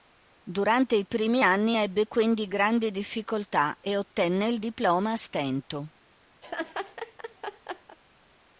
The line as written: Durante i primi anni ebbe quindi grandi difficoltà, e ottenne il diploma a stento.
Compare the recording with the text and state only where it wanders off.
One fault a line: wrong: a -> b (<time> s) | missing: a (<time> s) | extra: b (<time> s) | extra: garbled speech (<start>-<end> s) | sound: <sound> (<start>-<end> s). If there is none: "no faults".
sound: laugh (6.4-8.0 s)